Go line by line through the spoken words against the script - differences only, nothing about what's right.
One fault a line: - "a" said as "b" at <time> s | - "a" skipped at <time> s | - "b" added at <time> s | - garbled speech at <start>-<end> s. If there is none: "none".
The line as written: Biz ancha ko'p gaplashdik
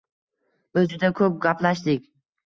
- "ancha" said as "juda" at 0.9 s